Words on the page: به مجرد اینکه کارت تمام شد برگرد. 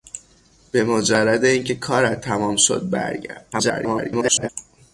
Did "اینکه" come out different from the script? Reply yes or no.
no